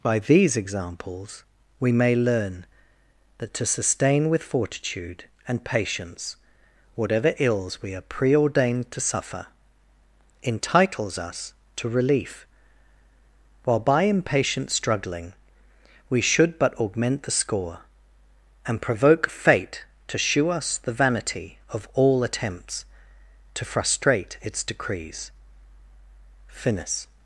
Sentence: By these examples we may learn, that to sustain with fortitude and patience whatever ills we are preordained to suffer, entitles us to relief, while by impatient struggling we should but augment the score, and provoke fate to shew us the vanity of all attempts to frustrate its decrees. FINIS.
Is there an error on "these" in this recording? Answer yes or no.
no